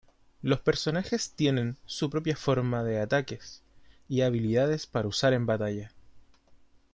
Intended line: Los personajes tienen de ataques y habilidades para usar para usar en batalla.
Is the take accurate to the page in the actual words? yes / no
no